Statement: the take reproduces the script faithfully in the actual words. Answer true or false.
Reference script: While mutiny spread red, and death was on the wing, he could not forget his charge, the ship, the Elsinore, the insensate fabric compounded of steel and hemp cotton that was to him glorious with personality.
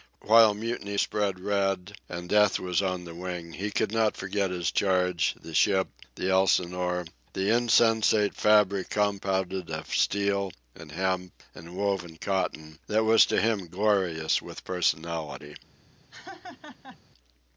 false